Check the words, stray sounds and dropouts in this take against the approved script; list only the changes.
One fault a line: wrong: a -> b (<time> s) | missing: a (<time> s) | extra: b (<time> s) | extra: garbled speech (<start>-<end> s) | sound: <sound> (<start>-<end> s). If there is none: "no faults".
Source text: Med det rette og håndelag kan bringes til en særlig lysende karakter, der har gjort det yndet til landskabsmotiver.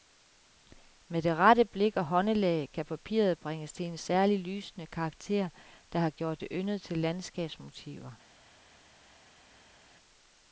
extra: blik (1.6 s)
extra: papiret (2.9 s)